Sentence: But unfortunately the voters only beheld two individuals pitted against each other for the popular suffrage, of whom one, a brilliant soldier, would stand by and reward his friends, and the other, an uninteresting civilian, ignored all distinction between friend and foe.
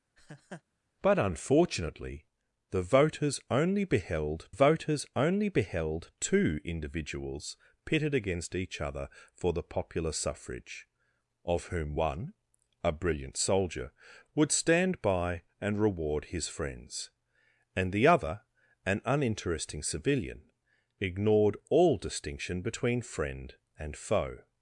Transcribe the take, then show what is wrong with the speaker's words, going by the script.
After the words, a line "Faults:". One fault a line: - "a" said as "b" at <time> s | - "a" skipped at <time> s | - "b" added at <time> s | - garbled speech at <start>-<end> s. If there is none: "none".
But unfortunately the voters only beheld voters only beheld two individuals pitted against each other for the popular suffrage, of whom one, a brilliant soldier, would stand by and reward his friends, and the other, an uninteresting civilian, ignored all distinction between friend and foe.
Faults:
- "voters only beheld" added at 4.5 s